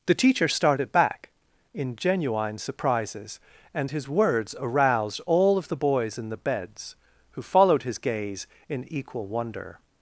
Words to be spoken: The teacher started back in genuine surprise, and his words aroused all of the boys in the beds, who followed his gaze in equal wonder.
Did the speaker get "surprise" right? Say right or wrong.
wrong